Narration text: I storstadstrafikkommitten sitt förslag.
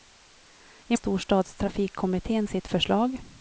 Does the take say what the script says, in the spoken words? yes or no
yes